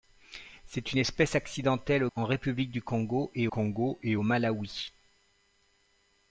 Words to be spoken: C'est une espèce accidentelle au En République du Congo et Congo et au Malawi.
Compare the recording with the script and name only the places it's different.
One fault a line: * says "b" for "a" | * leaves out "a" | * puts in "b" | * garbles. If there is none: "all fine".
all fine